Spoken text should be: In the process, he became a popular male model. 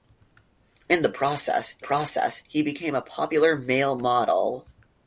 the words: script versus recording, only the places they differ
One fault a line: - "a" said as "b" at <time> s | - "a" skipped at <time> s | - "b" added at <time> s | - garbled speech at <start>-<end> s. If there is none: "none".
- "process" added at 1.8 s